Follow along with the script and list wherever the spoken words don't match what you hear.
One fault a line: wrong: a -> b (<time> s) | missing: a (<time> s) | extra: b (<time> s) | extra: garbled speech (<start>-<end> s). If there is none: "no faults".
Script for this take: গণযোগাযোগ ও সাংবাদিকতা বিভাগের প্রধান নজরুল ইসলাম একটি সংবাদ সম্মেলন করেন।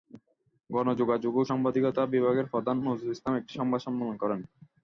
no faults